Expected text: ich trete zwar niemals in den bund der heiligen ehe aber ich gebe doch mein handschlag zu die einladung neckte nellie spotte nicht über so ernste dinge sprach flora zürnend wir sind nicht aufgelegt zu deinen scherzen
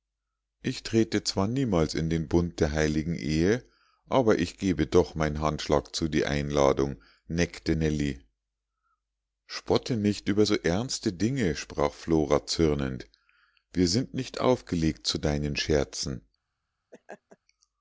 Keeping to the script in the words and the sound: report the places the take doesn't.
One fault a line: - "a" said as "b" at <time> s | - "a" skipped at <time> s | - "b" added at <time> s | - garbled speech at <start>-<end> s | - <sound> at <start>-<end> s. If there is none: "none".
- laugh at 16.9-17.4 s